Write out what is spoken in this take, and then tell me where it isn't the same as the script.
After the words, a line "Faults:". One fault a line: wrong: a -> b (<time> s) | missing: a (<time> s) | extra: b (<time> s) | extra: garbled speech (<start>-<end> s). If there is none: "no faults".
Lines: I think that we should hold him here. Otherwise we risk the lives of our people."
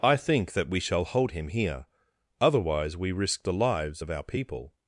I think that we shall hold him here. Otherwise we risk the lives of our people."
Faults:
wrong: should -> shall (0.8 s)